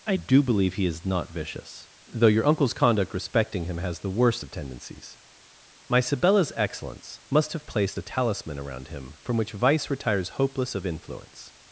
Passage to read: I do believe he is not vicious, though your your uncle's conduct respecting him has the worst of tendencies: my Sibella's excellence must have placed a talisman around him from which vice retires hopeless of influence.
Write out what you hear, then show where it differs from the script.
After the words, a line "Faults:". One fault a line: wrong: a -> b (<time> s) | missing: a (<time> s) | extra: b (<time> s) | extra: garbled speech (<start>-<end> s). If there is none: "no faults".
I do believe he is not vicious, though your uncle's conduct respecting him has the worst of tendencies: my Sibella's excellence must have placed a talisman around him from which vice retires hopeless of influence.
Faults:
missing: your (2.5 s)